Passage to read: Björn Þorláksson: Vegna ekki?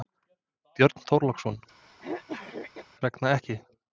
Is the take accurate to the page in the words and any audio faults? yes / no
no